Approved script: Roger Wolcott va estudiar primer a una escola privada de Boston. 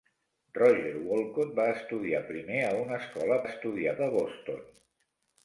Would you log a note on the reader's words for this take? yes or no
yes